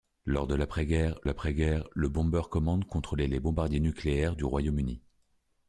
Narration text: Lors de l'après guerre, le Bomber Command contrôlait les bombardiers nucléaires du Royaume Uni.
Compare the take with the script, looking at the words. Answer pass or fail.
fail